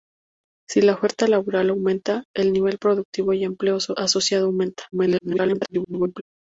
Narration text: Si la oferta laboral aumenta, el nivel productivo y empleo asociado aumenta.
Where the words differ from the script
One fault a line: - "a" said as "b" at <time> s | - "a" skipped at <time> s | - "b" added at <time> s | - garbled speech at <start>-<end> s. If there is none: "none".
- garbled speech at 4.9-6.2 s